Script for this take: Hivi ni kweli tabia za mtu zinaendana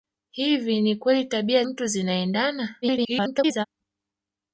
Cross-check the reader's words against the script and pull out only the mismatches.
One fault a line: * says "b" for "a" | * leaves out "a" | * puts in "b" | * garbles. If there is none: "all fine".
* leaves out "za"
* garbles